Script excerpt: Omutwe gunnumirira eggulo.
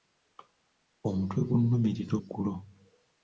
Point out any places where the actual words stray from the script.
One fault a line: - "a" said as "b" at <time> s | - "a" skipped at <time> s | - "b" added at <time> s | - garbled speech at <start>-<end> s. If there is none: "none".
none